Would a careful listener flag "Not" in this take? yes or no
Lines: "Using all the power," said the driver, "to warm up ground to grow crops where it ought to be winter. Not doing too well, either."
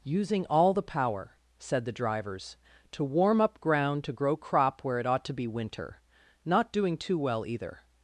no